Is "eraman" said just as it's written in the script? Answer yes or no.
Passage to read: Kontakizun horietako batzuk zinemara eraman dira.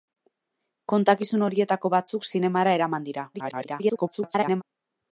yes